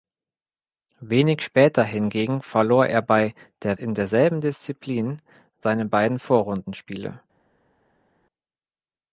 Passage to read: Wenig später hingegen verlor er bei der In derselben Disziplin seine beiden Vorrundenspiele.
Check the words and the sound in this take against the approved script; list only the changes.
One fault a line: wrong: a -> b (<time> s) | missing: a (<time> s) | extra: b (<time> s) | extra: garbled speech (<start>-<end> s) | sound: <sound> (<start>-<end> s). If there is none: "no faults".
no faults